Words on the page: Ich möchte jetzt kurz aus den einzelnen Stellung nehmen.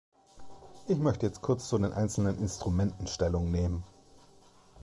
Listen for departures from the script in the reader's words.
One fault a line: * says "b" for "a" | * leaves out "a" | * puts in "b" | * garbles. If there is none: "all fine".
* says "zu" for "aus"
* puts in "Instrumenten"